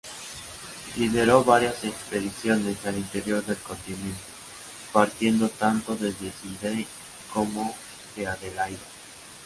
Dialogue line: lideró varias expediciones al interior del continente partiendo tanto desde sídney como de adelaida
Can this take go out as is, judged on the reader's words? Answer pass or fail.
pass